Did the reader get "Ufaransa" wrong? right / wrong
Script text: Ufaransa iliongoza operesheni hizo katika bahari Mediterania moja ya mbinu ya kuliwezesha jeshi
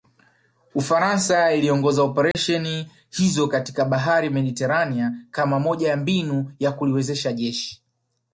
right